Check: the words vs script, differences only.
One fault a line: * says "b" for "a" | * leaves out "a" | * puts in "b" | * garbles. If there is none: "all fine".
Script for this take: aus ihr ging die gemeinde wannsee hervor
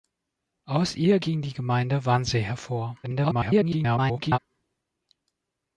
* garbles